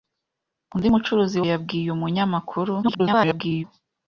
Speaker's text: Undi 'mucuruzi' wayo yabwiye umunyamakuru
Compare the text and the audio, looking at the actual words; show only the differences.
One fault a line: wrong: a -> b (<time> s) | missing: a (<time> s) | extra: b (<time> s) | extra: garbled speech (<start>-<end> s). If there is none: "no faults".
missing: wayo (1.5 s)
extra: garbled speech (2.8-3.6 s)